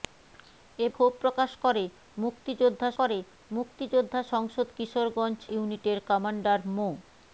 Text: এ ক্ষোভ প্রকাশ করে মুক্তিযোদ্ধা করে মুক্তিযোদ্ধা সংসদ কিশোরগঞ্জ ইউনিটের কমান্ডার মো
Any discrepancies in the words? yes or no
no